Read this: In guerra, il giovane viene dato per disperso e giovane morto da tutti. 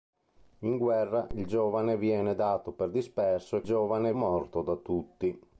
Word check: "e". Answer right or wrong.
right